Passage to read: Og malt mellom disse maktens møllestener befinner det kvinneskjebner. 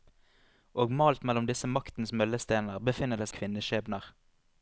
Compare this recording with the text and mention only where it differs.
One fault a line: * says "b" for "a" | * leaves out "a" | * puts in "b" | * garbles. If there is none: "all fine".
all fine